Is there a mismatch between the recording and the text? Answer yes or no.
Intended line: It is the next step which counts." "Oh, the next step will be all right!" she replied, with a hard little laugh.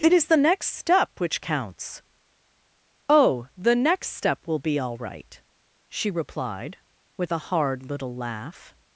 no